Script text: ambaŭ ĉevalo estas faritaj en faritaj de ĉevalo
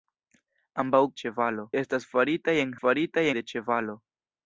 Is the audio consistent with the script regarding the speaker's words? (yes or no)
yes